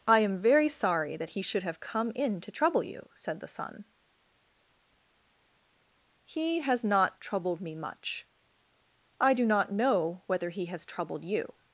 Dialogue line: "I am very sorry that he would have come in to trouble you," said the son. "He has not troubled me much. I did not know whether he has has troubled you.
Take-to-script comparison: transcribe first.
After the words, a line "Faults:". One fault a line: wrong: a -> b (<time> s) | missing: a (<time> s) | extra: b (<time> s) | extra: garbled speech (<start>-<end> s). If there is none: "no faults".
"I am very sorry that he should have come in to trouble you," said the son. "He has not troubled me much. I do not know whether he has troubled you.
Faults:
wrong: would -> should (1.4 s)
wrong: did -> do (9.3 s)
missing: has (10.9 s)